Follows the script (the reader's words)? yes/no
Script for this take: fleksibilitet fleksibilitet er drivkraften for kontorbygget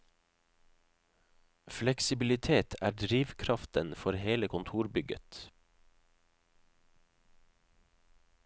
no